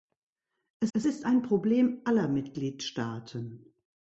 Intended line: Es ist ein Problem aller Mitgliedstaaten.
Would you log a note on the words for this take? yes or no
yes